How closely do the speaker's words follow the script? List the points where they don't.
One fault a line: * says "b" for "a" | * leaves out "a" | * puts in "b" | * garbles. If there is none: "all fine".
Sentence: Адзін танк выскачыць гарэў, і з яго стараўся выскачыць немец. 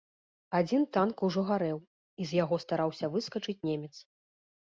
* says "ужо" for "выскачыць"